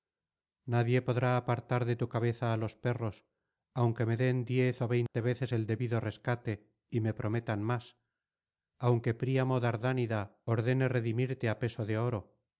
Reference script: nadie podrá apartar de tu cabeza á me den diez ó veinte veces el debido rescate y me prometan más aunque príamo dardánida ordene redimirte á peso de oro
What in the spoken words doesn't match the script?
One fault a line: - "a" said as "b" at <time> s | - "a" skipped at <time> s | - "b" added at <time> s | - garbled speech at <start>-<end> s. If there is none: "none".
- "los perros aunque" added at 2.6 s